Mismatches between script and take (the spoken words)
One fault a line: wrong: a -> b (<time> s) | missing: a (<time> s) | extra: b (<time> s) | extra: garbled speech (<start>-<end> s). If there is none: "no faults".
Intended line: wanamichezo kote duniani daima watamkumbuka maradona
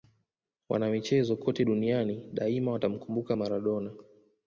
no faults